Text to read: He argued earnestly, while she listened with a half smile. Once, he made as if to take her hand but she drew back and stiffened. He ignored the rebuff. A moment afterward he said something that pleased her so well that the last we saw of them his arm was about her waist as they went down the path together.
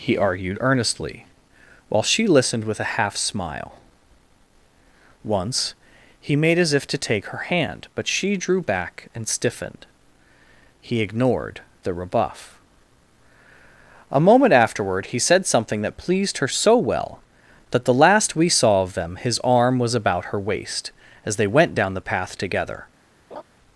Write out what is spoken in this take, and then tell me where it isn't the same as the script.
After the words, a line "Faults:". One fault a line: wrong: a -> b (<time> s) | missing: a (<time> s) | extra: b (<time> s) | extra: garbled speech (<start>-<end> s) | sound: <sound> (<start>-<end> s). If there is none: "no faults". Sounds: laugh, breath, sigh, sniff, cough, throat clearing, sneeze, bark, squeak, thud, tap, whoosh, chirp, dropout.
He argued earnestly, while she listened with a half smile. Once, he made as if to take her hand but she drew back and stiffened. He ignored the rebuff. A moment afterward he said something that pleased her so well that the last we saw of them his arm was about her waist as they went down the path together.
Faults:
sound: laugh (23.3-23.4 s)